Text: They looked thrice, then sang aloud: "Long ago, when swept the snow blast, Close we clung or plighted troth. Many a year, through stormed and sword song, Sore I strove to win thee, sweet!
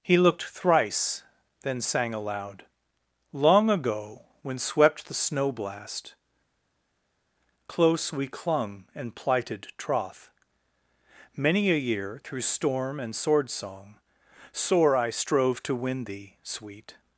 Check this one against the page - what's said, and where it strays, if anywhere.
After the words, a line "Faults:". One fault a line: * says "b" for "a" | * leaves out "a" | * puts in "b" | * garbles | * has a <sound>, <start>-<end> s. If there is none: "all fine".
He looked thrice, then sang aloud: "Long ago, when swept the snow blast, Close we clung and plighted troth. Many a year, through storm and sword song, Sore I strove to win thee, sweet!
Faults:
* says "He" for "They"
* says "and" for "or"
* says "storm" for "stormed"